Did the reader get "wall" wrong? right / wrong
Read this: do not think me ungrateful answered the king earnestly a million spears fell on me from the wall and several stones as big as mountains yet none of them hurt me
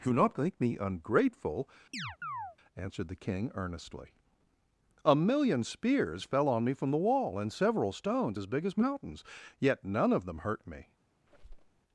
right